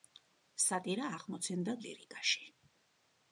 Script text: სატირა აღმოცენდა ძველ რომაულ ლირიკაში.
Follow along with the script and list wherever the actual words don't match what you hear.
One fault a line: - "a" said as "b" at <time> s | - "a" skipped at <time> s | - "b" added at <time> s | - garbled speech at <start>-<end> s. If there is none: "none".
- "ძველ რომაულ" skipped at 1.8 s